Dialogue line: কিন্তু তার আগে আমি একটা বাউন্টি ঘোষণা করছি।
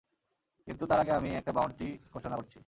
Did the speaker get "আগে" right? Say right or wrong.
right